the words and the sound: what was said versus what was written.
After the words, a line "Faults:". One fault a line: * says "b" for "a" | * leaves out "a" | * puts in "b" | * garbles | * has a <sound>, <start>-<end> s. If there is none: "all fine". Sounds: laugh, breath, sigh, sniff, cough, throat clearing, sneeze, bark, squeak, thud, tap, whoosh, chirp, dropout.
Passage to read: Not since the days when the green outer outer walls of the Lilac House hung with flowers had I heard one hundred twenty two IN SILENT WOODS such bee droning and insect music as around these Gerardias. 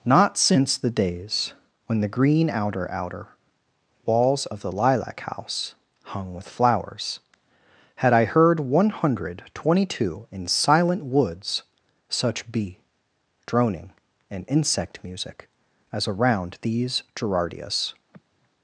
Not since the days when the green outer outer walls of the Lilac House hung with flowers had I heard one hundred twenty two IN SILENT WOODS such bee droning and insect music as around these Gerardias.
Faults:
* has a sigh, 18.1-18.5 s